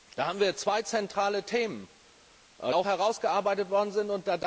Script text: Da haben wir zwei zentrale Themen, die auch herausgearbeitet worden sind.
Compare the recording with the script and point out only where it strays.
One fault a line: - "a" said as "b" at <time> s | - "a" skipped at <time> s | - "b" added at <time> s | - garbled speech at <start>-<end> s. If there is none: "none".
- "die" skipped at 1.9 s